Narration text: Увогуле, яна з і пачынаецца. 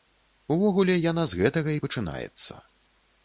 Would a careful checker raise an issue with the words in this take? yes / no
yes